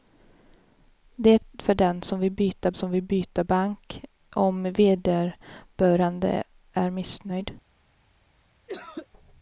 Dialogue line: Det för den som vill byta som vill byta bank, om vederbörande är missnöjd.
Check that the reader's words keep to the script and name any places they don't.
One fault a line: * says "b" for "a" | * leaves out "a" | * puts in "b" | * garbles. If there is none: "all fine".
all fine